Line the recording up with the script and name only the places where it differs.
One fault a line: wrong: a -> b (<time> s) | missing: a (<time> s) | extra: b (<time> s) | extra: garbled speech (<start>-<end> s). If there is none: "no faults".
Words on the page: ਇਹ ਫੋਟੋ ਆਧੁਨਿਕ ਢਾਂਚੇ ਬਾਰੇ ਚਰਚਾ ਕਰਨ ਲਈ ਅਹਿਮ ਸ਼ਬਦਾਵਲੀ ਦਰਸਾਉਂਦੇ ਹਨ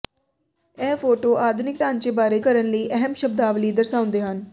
missing: ਚਰਚਾ (2.4 s)